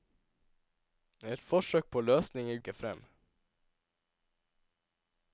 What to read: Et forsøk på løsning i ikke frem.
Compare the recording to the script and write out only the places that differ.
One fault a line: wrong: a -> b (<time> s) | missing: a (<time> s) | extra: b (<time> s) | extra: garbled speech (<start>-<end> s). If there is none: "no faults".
no faults